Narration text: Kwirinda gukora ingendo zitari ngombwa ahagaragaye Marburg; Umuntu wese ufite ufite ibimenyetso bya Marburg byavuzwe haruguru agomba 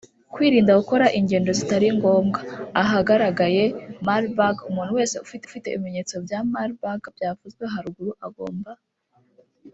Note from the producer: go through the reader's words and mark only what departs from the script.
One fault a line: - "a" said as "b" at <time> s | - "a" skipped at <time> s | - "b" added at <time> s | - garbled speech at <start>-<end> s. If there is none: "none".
none